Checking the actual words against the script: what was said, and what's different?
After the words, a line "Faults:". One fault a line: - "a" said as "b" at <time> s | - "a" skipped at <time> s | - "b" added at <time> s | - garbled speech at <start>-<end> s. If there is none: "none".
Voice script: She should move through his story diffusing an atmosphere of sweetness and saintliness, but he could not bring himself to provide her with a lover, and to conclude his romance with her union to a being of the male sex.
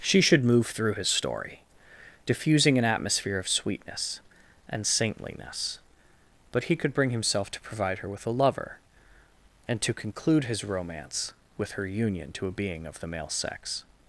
She should move through his story diffusing an atmosphere of sweetness and saintliness, but he could bring himself to provide her with a lover, and to conclude his romance with her union to a being of the male sex.
Faults:
- "not" skipped at 6.9 s